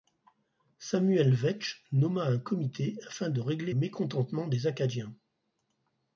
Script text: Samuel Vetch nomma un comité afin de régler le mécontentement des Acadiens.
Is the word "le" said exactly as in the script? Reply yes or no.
no